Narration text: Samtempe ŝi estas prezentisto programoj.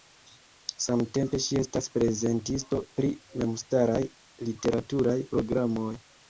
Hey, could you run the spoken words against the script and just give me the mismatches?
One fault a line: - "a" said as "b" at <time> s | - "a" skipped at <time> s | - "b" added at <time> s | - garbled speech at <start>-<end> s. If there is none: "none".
- "pri memstaraj literaturaj" added at 3.0 s